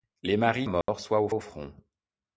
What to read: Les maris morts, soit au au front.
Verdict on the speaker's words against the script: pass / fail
pass